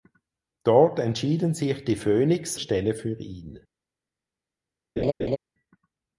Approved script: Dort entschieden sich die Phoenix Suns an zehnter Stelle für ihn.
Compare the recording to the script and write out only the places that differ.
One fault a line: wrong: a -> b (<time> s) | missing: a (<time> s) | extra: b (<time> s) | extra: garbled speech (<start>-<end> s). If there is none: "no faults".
missing: Suns an zehnter (2.5 s)